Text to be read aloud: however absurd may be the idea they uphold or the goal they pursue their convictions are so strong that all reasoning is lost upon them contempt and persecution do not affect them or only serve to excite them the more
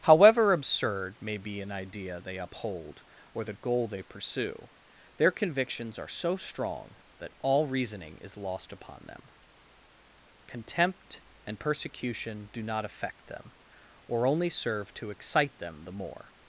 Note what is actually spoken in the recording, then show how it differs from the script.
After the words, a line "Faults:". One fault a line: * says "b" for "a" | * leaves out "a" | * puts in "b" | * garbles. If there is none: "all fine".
however absurd may be an idea they uphold or the goal they pursue their convictions are so strong that all reasoning is lost upon them contempt and persecution do not affect them or only serve to excite them the more
Faults:
* says "an" for "the"